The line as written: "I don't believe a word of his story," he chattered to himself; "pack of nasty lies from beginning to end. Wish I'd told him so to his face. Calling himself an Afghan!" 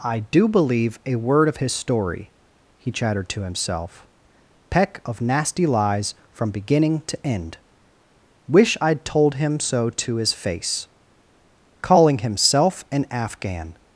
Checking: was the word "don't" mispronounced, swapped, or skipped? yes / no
yes